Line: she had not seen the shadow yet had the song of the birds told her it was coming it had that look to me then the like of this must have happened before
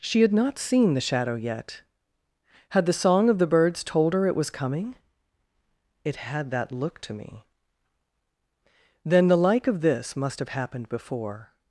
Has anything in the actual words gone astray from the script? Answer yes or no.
no